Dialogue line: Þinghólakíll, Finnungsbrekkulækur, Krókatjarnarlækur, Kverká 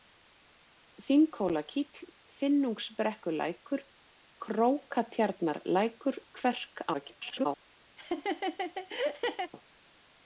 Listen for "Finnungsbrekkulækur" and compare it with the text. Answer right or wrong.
right